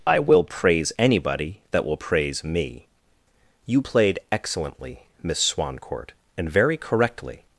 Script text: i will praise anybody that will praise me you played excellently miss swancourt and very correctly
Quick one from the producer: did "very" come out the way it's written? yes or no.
yes